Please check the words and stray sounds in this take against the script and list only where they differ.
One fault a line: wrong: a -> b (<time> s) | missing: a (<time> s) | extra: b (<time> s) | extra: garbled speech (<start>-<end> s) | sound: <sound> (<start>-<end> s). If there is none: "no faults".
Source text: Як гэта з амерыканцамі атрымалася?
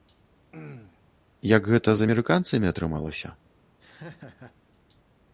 sound: throat clearing (0.5-1.0 s)
sound: laugh (3.8-4.6 s)